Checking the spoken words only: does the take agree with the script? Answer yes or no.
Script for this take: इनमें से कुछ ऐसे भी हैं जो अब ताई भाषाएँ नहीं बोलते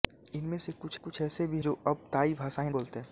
no